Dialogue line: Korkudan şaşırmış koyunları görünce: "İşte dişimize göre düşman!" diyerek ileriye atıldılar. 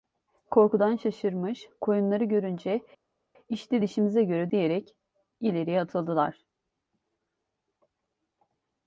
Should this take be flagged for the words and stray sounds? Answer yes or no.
yes